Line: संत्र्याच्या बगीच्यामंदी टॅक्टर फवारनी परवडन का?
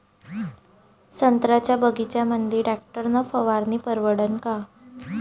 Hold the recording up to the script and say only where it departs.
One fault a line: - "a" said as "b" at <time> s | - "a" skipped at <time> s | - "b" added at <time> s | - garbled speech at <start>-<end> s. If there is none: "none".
- "न" added at 3.1 s